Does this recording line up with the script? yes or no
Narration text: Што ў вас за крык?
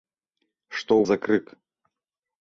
no